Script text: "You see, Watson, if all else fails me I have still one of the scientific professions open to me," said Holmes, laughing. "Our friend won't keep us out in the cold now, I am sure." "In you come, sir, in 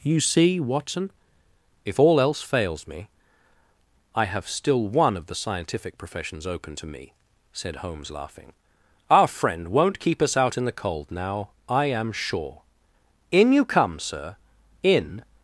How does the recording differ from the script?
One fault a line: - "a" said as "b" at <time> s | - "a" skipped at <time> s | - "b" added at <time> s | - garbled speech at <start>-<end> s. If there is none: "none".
none